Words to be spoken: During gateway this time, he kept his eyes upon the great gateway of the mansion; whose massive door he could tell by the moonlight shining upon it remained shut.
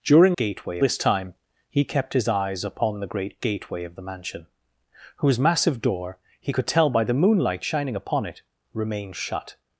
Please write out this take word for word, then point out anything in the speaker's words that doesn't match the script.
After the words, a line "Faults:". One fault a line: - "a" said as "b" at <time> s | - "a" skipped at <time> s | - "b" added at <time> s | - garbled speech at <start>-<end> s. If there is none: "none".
During gateway this time, he kept his eyes upon the great gateway of the mansion; whose massive door he could tell by the moonlight shining upon it remained shut.
Faults:
none